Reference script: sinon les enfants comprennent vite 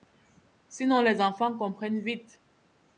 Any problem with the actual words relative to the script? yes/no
no